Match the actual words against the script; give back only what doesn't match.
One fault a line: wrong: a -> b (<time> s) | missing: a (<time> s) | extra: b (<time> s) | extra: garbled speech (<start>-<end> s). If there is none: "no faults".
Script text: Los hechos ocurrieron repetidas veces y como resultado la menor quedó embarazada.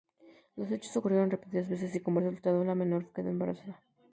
no faults